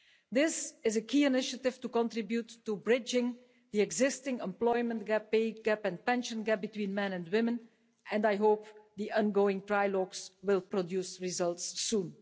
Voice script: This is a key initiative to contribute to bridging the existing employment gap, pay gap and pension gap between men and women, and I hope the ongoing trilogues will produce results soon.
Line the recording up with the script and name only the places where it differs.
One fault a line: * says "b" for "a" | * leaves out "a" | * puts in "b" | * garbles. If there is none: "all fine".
all fine